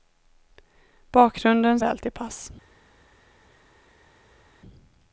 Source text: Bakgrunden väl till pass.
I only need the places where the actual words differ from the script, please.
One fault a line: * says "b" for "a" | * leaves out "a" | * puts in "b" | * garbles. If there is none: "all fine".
all fine